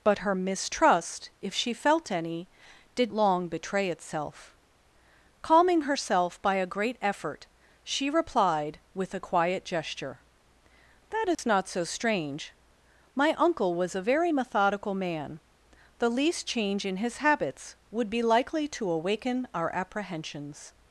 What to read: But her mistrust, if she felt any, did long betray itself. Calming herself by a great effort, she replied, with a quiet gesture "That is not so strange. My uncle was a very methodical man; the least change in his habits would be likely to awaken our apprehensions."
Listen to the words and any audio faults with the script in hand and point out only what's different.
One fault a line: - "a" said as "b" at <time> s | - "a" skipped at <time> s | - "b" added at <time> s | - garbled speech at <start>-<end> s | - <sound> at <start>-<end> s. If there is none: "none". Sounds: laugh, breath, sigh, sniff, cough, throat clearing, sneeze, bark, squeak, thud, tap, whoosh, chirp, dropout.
- dropout at 11.3-11.4 s